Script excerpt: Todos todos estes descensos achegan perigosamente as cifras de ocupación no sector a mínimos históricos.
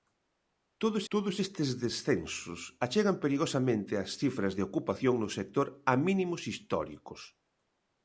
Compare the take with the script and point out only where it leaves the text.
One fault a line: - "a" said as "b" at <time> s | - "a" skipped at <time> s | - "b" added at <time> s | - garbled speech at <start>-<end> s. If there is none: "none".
none